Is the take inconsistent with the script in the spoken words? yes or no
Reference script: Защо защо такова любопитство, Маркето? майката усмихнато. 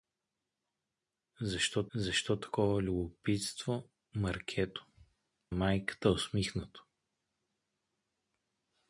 no